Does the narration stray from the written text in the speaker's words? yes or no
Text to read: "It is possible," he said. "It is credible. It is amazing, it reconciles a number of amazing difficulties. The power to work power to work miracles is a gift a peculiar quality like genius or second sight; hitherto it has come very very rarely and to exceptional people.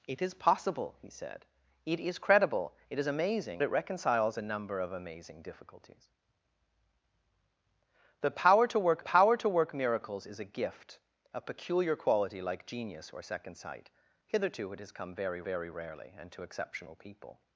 no